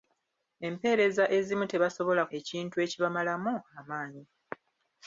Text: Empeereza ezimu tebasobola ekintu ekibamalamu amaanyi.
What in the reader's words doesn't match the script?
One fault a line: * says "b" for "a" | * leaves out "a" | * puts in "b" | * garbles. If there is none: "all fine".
all fine